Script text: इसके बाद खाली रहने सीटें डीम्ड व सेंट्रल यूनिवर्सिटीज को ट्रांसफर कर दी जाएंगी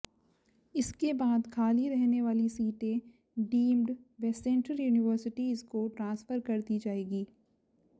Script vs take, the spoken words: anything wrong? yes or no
yes